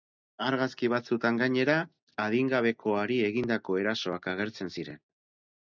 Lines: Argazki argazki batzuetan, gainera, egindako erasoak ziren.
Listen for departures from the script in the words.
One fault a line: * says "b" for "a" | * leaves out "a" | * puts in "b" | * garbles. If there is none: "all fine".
* leaves out "argazki"
* puts in "adingabekoari"
* puts in "agertzen"